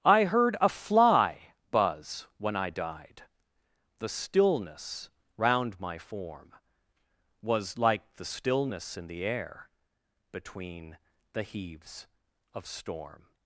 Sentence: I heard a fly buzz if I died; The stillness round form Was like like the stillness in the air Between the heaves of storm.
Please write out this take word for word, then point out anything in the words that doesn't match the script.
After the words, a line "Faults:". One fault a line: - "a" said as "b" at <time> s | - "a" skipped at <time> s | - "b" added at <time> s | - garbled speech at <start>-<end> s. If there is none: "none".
I heard a fly buzz when I died; The stillness round my form Was like the stillness in the air Between the heaves of storm.
Faults:
- "if" said as "when" at 2.4 s
- "my" added at 5.8 s
- "like" skipped at 8.2 s